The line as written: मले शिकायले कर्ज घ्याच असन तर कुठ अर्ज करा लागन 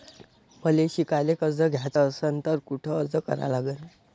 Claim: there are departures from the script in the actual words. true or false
false